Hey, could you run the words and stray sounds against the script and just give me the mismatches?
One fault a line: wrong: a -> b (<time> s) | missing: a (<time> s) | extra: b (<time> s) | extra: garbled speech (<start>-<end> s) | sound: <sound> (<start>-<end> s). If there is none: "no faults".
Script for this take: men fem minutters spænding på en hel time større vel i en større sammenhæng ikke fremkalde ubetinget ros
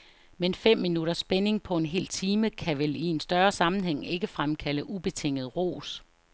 wrong: større -> kan (2.5 s)